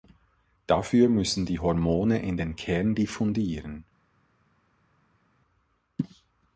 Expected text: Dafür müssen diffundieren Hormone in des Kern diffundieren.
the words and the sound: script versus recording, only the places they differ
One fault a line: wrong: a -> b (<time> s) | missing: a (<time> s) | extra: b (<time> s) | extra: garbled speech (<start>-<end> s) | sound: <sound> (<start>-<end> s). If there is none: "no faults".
wrong: diffundieren -> die (1.4 s)
wrong: des -> den (2.4 s)